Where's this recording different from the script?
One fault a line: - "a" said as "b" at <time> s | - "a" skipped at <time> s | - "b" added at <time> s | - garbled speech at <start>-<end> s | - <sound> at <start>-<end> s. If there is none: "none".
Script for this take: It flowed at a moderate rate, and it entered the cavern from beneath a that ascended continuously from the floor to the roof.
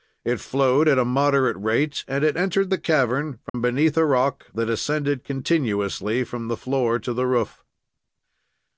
- dropout at 3.5-3.5 s
- "rock" added at 4.0 s